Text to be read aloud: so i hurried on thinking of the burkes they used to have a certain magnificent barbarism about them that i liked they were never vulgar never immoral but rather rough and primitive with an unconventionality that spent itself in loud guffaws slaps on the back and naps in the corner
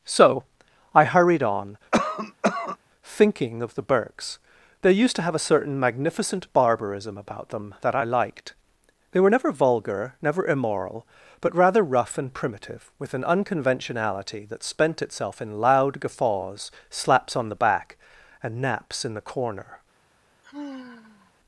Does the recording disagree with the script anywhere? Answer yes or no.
no